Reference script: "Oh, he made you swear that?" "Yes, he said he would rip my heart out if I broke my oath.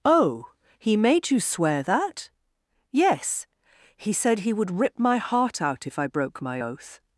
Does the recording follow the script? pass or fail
pass